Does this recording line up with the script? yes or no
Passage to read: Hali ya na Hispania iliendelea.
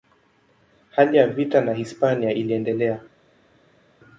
no